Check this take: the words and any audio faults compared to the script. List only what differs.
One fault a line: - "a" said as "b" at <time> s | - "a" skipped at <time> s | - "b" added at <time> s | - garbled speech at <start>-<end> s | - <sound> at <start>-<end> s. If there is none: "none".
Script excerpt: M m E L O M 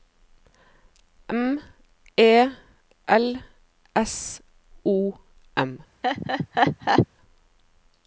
- "m" skipped at 1.6 s
- "S" added at 3.9 s
- laugh at 6.0-7.1 s